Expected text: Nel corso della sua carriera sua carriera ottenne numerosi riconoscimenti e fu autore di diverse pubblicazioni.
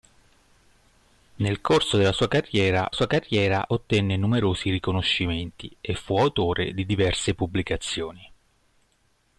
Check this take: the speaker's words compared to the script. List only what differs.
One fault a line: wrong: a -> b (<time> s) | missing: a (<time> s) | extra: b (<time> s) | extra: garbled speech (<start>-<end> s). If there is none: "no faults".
no faults